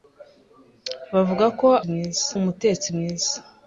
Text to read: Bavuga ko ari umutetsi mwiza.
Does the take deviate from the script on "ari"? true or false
true